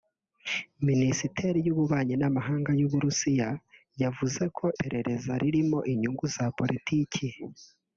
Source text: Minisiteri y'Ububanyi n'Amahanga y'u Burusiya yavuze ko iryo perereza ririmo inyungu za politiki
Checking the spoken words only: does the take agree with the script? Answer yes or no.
no